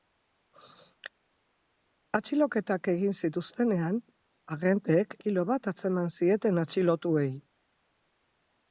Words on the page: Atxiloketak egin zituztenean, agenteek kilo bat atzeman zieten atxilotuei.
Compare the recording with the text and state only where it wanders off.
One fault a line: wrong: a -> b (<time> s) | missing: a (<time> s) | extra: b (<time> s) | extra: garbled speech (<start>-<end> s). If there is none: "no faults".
no faults